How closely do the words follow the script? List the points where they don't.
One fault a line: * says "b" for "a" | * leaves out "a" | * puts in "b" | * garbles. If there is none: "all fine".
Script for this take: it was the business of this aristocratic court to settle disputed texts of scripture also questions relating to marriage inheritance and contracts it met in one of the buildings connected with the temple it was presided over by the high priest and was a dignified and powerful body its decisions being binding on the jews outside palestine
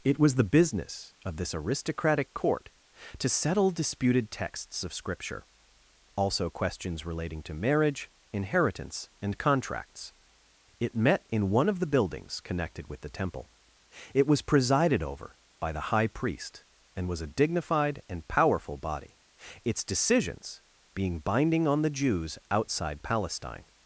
all fine